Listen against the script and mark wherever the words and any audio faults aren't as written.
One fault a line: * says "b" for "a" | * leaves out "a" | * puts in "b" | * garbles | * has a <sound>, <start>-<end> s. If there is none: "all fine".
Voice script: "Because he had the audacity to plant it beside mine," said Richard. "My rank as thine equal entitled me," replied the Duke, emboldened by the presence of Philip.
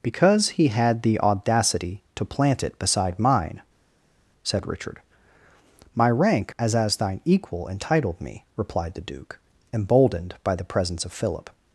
* puts in "as"